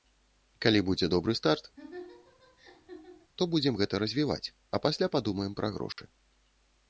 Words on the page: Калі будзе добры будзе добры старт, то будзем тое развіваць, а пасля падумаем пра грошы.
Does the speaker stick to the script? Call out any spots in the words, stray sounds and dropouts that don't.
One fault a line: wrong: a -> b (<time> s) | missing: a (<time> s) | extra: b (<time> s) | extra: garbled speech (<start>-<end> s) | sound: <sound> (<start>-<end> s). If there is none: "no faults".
missing: будзе добры (1.3 s)
sound: laugh (1.8-3.3 s)
wrong: тое -> гэта (3.8 s)
sound: dropout (5.9-6.0 s)